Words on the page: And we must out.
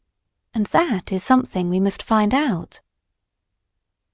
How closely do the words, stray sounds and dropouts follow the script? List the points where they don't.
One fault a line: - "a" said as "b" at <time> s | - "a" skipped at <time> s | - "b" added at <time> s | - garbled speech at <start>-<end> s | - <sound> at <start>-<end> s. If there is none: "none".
- "that is something" added at 0.7 s
- "find" added at 2.0 s